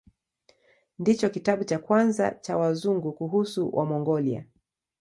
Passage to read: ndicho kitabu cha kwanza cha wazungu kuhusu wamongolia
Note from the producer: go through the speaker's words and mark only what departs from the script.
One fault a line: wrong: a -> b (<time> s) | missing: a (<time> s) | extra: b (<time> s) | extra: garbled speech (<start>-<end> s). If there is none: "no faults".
no faults